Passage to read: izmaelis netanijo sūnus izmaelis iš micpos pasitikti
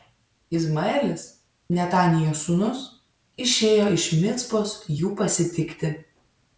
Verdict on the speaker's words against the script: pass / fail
fail